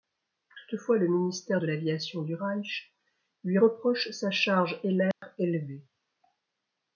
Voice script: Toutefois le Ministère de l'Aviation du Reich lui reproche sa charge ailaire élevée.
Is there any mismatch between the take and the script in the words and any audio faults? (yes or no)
yes